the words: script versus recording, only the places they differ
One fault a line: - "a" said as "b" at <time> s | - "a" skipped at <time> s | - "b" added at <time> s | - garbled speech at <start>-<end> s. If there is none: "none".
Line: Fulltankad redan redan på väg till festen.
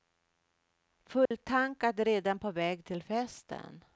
- "redan" skipped at 2.4 s